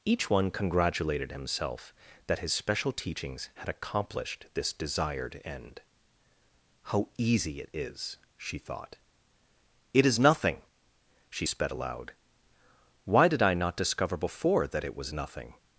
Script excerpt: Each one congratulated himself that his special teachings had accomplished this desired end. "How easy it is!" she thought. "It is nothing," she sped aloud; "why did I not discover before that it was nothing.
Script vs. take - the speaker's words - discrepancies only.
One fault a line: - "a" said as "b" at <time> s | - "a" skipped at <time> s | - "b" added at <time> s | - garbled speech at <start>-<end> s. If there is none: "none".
none